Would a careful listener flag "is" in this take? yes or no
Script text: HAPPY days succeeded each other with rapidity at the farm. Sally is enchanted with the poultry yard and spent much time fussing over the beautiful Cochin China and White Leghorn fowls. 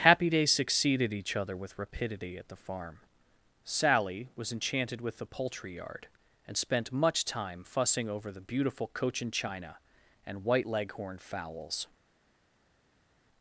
yes